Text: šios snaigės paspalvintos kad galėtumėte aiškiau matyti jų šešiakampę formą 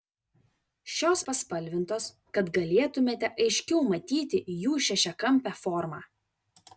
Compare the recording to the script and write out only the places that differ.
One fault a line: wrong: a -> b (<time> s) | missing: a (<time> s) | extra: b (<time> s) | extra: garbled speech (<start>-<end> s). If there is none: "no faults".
missing: snaigės (1.2 s)